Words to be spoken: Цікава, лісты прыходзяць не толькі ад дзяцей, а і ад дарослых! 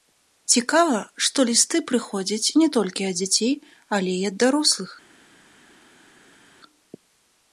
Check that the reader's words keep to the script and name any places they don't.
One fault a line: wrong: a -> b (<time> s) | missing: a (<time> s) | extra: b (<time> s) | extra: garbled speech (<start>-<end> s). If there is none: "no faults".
extra: што (1.2 s)
wrong: а -> але (4.0 s)